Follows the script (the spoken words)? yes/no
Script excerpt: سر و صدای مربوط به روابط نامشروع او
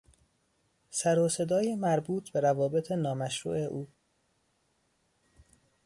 yes